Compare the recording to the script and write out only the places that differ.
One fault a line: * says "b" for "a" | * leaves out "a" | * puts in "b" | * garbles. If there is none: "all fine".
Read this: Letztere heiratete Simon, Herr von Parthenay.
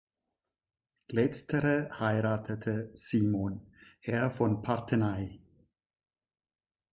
all fine